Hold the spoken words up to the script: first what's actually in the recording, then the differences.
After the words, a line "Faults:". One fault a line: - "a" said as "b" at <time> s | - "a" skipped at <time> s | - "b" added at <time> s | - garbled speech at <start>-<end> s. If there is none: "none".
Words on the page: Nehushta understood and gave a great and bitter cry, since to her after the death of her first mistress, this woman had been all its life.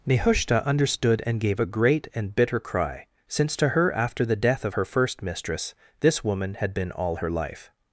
Nehushta understood and gave a great and bitter cry, since to her after the death of her first mistress, this woman had been all her life.
Faults:
- "its" said as "her" at 7.2 s